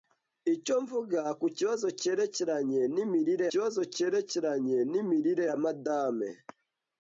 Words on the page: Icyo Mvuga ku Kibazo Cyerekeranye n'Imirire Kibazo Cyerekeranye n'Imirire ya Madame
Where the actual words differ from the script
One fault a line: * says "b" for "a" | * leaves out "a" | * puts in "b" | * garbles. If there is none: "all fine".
all fine